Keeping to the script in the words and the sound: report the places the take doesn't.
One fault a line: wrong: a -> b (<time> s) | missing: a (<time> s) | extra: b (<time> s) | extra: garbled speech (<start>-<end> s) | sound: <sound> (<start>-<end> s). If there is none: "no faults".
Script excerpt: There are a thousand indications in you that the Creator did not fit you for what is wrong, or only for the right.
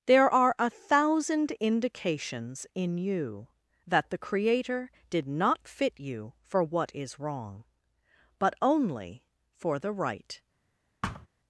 wrong: or -> but (8.4 s)
sound: thud (11.0-11.3 s)